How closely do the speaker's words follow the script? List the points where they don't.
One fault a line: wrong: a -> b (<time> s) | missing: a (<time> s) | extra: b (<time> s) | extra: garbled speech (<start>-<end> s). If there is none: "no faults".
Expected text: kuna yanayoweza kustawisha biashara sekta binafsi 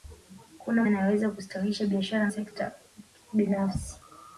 no faults